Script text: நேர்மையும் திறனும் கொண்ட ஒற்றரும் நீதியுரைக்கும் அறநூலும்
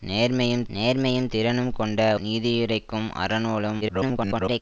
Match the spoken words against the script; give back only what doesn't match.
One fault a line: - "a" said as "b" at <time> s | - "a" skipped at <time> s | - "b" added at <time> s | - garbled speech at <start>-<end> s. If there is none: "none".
- "நேர்மையும்" added at 0.7 s
- "ஒற்றரும்" skipped at 2.0 s
- garbled speech at 3.8-4.6 s